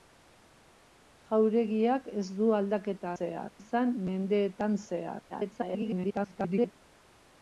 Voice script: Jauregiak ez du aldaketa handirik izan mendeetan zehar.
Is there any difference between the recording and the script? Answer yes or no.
yes